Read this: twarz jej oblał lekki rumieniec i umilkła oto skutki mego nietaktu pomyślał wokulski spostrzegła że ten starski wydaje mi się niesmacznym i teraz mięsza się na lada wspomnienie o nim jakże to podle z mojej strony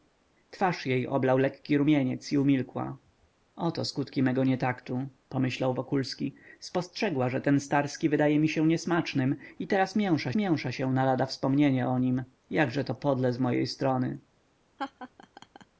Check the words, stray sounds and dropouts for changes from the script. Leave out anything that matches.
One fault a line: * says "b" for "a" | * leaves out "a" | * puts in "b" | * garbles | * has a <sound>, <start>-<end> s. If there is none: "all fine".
* puts in "mięsza"
* has a laugh, 14.8-15.7 s